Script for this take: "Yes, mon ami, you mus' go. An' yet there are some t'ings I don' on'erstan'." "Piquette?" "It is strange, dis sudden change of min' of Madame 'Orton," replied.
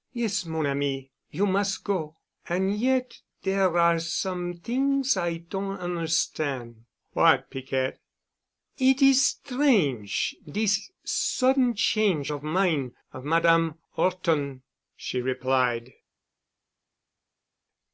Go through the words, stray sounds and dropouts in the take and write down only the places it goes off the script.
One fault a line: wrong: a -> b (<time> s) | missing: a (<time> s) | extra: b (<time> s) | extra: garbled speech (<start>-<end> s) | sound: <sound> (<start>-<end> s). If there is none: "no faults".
extra: What (7.1 s)
extra: she (15.0 s)